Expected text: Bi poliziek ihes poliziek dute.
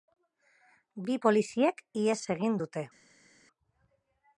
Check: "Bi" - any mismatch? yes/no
no